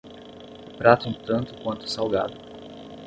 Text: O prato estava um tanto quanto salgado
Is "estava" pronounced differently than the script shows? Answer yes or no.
yes